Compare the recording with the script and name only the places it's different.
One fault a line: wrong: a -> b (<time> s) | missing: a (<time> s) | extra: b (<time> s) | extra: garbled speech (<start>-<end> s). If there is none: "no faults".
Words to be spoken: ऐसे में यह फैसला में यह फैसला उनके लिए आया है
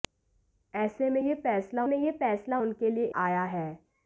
no faults